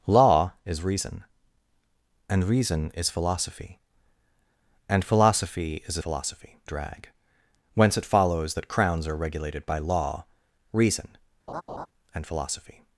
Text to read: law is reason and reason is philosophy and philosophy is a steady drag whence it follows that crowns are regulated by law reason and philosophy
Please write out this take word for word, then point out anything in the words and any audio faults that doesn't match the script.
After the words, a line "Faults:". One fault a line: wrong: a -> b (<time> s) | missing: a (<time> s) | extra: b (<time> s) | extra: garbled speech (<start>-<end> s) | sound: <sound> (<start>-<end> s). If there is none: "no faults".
law is reason and reason is philosophy and philosophy is a philosophy drag whence it follows that crowns are regulated by law reason and philosophy
Faults:
wrong: steady -> philosophy (6.0 s)
sound: laugh (11.5-11.9 s)